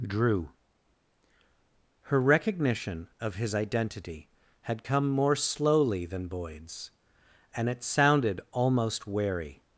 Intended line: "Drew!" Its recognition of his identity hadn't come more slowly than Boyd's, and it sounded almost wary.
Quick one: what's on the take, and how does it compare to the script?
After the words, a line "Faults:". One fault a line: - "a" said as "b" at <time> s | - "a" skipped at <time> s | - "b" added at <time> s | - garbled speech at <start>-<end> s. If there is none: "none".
"Drew!" Her recognition of his identity had come more slowly than Boyd's, and it sounded almost wary.
Faults:
- "Its" said as "Her" at 2.0 s
- "hadn't" said as "had" at 4.6 s